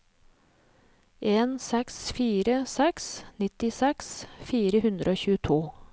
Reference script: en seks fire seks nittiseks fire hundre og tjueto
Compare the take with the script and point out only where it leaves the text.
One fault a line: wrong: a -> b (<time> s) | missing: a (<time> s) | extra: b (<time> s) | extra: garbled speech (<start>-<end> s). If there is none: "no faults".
no faults